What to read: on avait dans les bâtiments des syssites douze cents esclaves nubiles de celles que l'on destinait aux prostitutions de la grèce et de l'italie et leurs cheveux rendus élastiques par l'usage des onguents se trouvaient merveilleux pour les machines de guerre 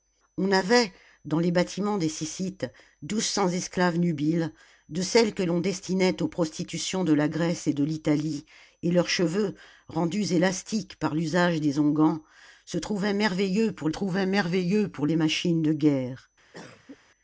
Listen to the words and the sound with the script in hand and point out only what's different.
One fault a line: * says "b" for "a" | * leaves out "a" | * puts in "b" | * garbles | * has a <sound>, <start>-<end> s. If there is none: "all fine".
* puts in "trouvaient merveilleux pour"
* has a cough, 16.5-17.0 s